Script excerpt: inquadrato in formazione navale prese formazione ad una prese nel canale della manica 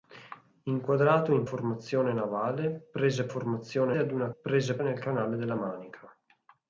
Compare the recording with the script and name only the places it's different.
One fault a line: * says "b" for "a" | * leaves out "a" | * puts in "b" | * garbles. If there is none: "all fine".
all fine